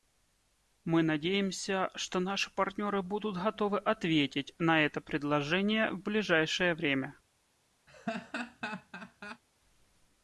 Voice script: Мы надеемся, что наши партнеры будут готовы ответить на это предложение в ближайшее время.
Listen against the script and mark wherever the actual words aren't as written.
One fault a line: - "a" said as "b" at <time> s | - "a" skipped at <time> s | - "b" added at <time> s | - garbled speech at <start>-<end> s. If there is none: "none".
none